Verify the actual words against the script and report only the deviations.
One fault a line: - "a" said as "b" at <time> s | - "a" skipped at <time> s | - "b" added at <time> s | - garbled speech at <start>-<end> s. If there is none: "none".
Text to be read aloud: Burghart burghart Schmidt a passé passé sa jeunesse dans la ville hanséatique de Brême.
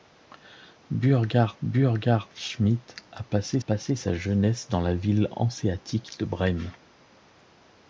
none